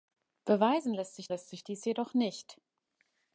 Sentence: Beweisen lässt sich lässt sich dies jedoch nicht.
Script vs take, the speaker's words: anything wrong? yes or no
no